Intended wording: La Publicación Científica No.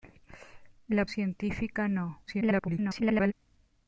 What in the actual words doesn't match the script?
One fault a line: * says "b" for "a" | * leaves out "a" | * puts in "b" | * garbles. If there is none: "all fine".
* leaves out "Publicación"
* garbles